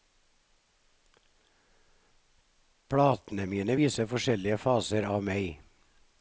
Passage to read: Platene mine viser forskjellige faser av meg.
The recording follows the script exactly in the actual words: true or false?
true